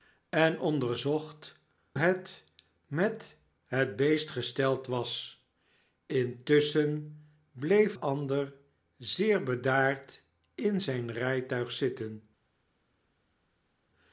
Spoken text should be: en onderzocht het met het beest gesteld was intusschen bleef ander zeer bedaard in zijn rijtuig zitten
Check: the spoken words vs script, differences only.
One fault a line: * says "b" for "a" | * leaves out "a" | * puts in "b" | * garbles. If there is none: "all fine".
all fine